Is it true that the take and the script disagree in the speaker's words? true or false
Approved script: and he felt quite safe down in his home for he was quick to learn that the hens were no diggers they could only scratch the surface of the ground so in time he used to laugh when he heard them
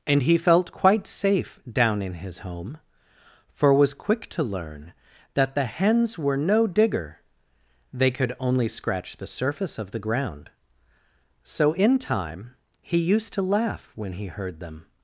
true